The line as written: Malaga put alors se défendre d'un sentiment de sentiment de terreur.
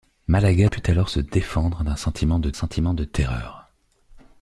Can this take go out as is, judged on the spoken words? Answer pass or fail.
pass